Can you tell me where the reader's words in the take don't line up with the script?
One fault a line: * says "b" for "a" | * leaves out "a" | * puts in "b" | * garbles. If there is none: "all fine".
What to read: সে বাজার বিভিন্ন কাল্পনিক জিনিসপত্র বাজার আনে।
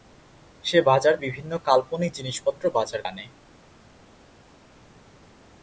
all fine